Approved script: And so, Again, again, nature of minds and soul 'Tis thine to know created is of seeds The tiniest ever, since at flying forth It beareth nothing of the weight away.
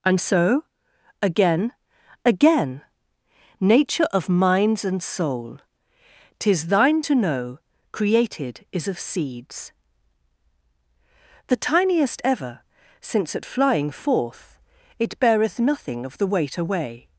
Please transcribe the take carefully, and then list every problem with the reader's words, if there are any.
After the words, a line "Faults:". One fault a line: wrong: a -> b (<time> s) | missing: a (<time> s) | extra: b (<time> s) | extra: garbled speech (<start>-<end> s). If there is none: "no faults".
And so, Again, again, nature of minds and soul 'Tis thine to know created is of seeds The tiniest ever, since at flying forth It beareth nothing of the weight away.
Faults:
no faults